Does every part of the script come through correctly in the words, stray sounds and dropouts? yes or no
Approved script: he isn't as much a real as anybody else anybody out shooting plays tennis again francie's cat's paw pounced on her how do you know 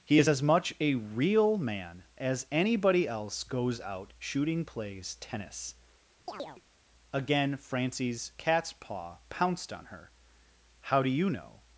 no